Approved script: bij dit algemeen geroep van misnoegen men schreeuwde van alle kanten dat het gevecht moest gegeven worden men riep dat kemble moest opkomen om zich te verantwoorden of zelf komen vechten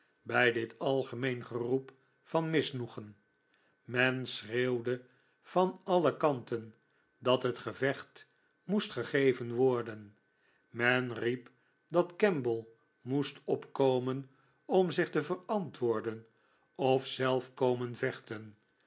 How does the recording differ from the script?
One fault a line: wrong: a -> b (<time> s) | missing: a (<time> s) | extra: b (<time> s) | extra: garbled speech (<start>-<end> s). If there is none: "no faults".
no faults